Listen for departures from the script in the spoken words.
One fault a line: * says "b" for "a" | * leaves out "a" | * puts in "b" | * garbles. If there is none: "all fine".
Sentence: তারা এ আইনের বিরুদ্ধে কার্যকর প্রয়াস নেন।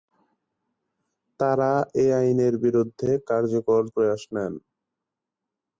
all fine